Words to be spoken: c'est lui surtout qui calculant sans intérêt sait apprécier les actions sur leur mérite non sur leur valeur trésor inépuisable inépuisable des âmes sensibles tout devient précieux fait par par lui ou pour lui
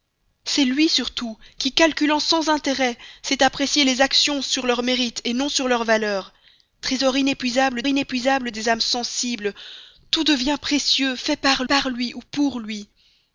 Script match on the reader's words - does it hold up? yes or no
yes